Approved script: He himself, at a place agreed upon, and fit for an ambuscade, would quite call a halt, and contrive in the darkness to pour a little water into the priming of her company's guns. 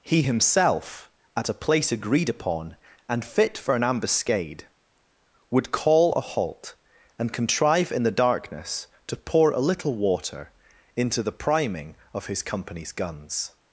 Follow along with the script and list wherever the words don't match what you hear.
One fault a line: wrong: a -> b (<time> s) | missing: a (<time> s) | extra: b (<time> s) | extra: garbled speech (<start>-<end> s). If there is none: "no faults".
missing: quite (5.7 s)
wrong: her -> his (12.3 s)